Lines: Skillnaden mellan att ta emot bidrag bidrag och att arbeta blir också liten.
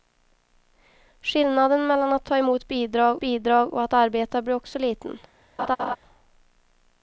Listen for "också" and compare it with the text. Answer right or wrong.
right